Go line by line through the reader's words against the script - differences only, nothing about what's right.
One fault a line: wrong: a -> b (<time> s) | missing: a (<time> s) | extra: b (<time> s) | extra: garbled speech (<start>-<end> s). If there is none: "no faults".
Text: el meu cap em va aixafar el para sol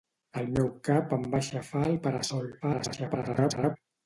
extra: garbled speech (2.6-3.8 s)